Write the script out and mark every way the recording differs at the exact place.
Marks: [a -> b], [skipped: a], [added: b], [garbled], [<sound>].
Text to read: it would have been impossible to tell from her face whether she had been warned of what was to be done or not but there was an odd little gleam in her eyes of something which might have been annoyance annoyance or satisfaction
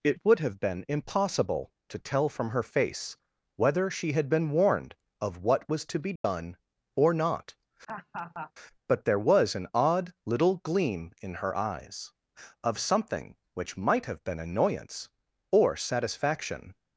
it would have been impossible to tell from her face whether she had been warned of what was to be done [dropout] or not [laugh] but there was an odd little gleam in her eyes of something which might have been annoyance [skipped: annoyance] or satisfaction